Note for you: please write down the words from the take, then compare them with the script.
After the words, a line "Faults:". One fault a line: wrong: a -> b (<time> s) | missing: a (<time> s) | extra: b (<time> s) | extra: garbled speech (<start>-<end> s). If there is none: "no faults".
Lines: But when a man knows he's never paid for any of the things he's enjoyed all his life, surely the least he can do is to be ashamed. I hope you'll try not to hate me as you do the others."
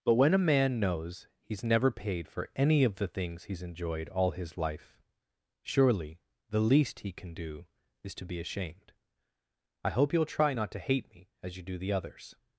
But when a man knows he's never paid for any of the things he's enjoyed all his life, surely the least he can do is to be ashamed. I hope you'll try not to hate me as you do the others."
Faults:
no faults